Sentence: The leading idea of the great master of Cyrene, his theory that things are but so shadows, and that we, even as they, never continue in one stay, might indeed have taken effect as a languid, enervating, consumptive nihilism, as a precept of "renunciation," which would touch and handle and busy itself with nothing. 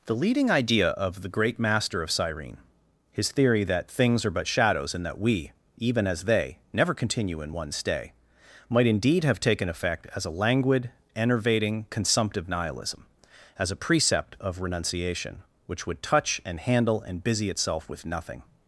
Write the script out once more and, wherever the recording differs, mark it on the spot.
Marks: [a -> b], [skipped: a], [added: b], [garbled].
The leading idea of the great master of Cyrene, his theory that things are but [skipped: so] shadows, and that we, even as they, never continue in one stay, might indeed have taken effect as a languid, enervating, consumptive nihilism, as a precept of "renunciation," which would touch and handle and busy itself with nothing.